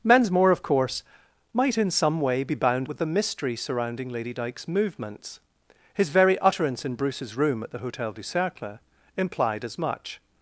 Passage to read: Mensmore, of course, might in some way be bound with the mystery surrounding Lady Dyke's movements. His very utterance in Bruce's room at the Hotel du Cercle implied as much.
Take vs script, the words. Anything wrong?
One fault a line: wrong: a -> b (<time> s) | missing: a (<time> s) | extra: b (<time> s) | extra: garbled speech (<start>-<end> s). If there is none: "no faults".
no faults